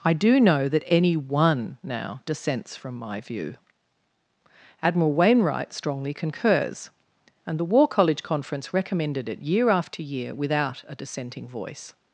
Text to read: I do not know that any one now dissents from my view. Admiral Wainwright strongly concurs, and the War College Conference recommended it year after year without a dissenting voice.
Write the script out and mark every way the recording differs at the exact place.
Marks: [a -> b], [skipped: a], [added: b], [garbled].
I do [skipped: not] know that any one now dissents from my view. Admiral Wainwright strongly concurs, and the War College Conference recommended it year after year without a dissenting voice.